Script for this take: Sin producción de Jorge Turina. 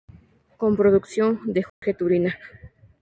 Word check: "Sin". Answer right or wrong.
wrong